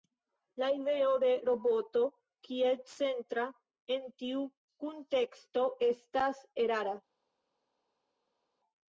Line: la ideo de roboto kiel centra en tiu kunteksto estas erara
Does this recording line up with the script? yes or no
yes